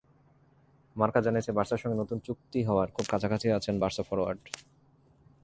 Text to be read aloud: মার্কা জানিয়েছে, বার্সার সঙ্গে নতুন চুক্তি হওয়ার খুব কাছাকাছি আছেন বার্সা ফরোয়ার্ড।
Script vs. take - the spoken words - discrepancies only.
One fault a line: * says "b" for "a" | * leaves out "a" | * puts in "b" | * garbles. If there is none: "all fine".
all fine